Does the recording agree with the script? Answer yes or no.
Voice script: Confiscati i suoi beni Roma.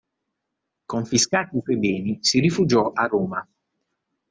no